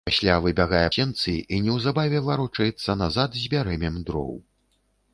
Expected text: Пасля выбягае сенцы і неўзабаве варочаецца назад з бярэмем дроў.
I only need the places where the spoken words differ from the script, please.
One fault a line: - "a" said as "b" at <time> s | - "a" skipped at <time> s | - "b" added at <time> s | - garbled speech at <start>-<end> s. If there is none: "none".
none